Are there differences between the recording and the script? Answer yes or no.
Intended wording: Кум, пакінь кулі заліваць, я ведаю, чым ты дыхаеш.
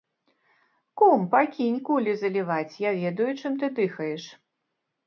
no